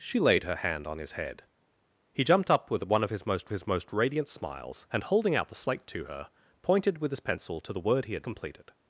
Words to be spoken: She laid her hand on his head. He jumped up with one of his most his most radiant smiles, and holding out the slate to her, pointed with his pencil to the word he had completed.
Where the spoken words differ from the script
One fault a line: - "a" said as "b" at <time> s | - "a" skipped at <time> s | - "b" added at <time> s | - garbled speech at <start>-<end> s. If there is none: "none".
none